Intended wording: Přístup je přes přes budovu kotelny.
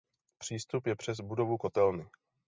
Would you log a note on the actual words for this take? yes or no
yes